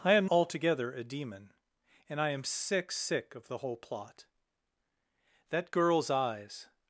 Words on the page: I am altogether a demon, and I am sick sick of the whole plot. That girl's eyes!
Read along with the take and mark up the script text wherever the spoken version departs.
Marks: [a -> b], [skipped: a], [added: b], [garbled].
I am altogether a demon, and I am sick sick of the whole plot. That girl's eyes!